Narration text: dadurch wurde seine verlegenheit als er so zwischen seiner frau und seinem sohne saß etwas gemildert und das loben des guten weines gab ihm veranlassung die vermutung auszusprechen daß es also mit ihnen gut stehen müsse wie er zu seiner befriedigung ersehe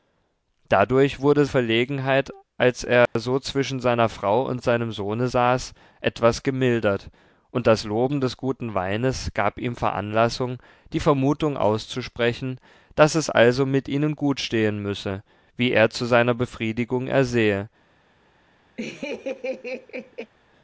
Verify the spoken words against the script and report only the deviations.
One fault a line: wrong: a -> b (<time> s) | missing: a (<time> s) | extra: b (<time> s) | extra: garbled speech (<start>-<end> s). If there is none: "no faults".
missing: seine (1.4 s)